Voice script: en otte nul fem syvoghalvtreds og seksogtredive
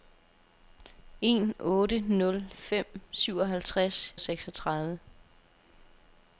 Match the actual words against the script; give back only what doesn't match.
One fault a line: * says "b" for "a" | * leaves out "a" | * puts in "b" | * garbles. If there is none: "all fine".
all fine